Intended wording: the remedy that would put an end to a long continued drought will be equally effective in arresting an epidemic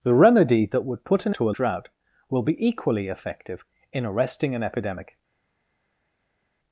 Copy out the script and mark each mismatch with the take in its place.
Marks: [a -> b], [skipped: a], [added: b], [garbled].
the remedy that would put an [skipped: end] to a [skipped: long continued] drought will be equally effective in arresting an epidemic